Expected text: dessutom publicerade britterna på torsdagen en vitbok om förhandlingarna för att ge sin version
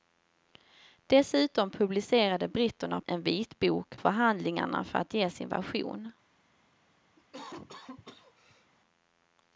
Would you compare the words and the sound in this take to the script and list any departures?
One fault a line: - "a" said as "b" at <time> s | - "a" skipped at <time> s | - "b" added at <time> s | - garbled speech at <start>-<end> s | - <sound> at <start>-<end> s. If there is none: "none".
- "på torsdagen" skipped at 3.0 s
- "om" skipped at 3.9 s
- cough at 7.2-8.7 s